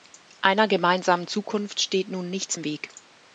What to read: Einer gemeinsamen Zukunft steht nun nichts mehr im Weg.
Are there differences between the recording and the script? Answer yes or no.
yes